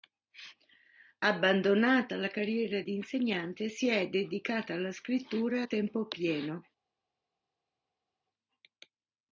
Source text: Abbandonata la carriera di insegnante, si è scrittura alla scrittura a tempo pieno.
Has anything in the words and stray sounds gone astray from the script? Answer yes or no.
yes